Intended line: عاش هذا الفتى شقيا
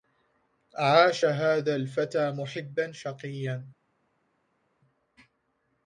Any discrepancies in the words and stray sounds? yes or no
yes